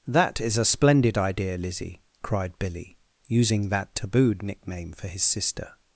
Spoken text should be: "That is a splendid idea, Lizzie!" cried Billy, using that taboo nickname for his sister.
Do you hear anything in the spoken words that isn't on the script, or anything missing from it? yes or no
yes